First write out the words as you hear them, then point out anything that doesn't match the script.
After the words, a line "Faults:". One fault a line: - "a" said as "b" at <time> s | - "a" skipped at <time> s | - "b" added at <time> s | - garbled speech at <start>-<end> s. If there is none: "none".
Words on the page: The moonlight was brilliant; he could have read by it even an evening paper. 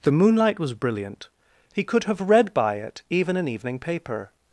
The moonlight was brilliant; he could have read by it even an evening paper.
Faults:
none